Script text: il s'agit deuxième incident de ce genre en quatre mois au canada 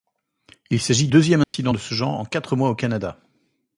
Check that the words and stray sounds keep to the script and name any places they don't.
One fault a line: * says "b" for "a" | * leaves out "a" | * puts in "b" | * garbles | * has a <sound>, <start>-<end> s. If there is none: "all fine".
* has a dropout, 1.4-1.5 s